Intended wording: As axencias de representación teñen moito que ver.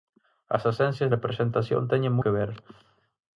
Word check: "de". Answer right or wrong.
wrong